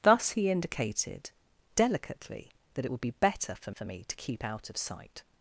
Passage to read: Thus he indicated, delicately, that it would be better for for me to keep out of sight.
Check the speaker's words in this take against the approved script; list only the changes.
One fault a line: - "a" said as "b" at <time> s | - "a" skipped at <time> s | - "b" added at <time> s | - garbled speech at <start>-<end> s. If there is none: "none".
none